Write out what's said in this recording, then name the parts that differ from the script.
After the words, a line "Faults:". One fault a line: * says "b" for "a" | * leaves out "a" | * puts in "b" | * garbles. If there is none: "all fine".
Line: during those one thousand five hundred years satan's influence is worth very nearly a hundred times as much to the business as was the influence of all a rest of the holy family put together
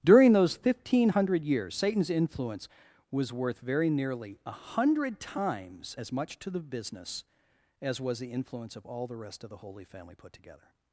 during those one thousand five hundred years satan's influence was worth very nearly a hundred times as much to the business as was the influence of all the rest of the holy family put together
Faults:
* says "was" for "is"
* says "the" for "a"